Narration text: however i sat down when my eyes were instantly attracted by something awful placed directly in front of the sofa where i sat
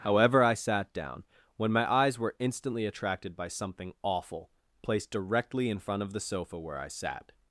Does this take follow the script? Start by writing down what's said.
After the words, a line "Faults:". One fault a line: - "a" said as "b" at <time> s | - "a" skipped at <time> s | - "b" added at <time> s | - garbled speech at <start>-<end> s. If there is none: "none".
however i sat down when my eyes were instantly attracted by something awful placed directly in front of the sofa where i sat
Faults:
none